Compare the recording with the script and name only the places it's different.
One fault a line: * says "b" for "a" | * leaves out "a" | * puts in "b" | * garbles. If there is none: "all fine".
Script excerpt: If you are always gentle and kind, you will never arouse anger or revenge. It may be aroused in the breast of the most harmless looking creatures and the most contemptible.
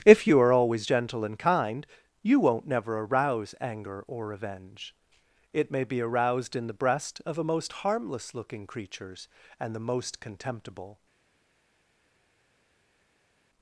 * says "won't" for "will"
* says "a" for "the"